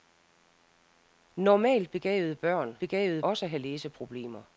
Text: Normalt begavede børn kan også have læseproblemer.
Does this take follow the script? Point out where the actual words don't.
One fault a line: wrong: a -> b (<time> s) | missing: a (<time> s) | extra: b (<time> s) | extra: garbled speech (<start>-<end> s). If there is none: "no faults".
wrong: kan -> begavede (2.8 s)